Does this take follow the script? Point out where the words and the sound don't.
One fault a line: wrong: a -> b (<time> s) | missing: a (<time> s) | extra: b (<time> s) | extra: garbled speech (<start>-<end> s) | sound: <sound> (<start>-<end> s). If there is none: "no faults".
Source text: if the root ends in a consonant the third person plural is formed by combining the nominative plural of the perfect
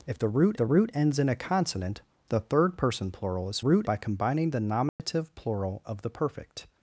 extra: the root (0.5 s)
wrong: formed -> root (3.6 s)
sound: dropout (4.9-5.0 s)